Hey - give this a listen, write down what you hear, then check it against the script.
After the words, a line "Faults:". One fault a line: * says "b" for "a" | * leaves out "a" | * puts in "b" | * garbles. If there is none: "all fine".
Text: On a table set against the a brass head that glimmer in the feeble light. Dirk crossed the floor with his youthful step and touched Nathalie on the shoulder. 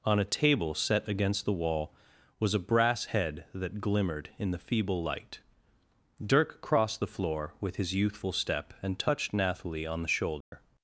On a table set against the wall was a brass head that glimmered in the feeble light. Dirk crossed the floor with his youthful step and touched Nathalie on the shoulder.
Faults:
* puts in "wall was"
* says "glimmered" for "glimmer"